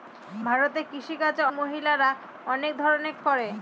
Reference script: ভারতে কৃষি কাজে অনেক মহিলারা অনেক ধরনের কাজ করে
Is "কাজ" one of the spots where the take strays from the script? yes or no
yes